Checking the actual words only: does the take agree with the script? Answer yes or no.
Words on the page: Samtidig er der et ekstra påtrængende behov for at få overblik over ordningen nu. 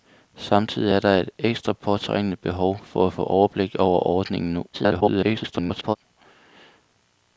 no